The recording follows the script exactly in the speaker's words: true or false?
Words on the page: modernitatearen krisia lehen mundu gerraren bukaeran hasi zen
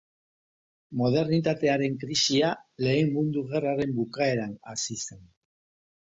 true